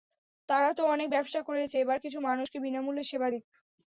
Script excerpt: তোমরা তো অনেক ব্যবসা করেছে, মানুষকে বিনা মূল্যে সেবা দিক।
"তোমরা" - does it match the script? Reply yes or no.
no